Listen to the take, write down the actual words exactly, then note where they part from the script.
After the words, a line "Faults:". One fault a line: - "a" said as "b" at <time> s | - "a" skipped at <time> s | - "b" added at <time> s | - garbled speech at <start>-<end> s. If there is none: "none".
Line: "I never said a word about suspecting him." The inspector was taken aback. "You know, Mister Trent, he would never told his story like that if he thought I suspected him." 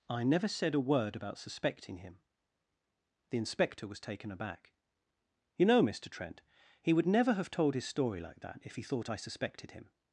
"I never said a word about suspecting him." The inspector was taken aback. "You know, Mister Trent, he would never have told his story like that if he thought I suspected him."
Faults:
- "have" added at 7.3 s